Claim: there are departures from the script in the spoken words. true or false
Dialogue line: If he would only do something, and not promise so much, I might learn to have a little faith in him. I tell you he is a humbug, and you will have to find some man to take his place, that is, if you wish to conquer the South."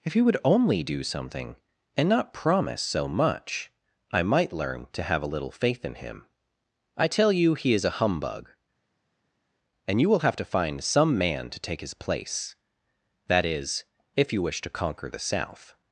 false